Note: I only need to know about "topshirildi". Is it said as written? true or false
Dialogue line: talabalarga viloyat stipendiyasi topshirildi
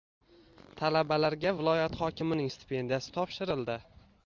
true